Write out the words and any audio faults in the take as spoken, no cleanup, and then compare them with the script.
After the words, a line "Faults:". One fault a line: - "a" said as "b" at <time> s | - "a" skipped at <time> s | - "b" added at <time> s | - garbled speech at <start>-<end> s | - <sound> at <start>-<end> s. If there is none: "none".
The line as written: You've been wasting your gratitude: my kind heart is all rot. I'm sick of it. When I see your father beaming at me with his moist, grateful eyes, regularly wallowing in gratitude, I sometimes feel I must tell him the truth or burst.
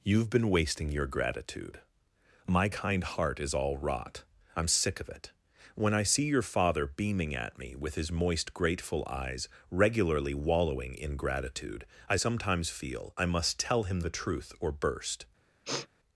You've been wasting your gratitude: my kind heart is all rot. I'm sick of it. When I see your father beaming at me with his moist, grateful eyes, regularly wallowing in gratitude, I sometimes feel I must tell him the truth or burst.
Faults:
- sniff at 15.6-15.9 s